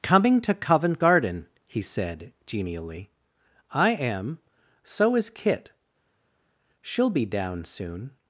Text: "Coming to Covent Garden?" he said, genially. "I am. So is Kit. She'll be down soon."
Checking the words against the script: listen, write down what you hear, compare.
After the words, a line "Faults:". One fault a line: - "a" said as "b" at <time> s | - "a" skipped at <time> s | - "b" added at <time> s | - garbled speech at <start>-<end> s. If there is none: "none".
"Coming to Covent Garden?" he said, genially. "I am. So is Kit. She'll be down soon."
Faults:
none